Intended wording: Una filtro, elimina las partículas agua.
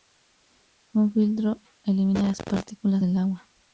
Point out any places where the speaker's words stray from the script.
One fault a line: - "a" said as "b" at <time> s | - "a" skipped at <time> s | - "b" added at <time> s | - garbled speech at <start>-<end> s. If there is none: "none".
- "Una" said as "Un" at 0.9 s
- "del" added at 3.0 s